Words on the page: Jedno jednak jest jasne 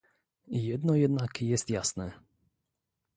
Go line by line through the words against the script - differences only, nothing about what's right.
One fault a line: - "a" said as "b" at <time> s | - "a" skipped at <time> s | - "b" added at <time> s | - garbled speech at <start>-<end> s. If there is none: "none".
none